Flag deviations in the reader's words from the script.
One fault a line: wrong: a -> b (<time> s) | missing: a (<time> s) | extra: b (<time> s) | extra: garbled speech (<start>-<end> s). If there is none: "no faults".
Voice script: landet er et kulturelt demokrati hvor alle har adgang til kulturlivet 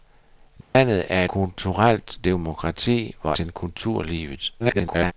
missing: et (1.2 s)
missing: alle har adgang (3.3 s)
extra: garbled speech (4.6-5.1 s)